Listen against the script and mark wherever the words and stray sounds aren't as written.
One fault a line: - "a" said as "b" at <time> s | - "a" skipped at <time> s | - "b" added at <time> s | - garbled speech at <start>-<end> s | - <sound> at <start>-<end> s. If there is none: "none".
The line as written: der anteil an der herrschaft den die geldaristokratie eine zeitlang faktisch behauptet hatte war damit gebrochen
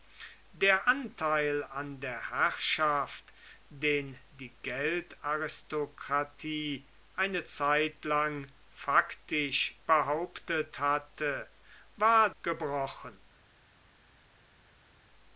- "damit" skipped at 12.3 s